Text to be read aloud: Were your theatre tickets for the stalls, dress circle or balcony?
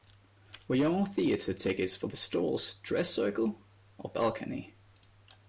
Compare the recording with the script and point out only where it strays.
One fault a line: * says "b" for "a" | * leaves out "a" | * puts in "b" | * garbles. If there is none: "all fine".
all fine